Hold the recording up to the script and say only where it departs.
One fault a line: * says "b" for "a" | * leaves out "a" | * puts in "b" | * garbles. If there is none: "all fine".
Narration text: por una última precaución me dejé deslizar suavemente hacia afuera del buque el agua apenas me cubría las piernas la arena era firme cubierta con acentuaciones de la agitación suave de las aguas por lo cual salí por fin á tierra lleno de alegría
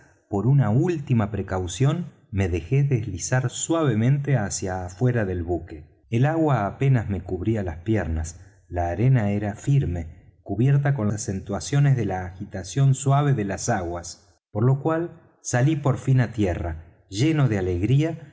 all fine